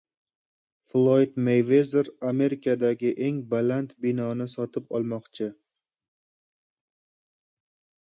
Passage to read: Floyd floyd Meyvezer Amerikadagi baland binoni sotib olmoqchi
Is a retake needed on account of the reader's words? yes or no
yes